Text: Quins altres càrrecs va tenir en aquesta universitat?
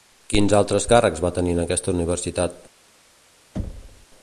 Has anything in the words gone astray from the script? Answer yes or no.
no